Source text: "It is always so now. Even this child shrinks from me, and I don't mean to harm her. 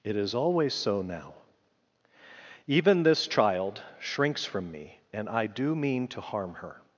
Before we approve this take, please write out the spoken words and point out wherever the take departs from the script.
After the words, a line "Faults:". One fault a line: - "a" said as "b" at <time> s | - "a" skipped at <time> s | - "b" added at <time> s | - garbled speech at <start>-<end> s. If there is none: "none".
"It is always so now. Even this child shrinks from me, and I do mean to harm her.
Faults:
- "don't" said as "do" at 5.5 s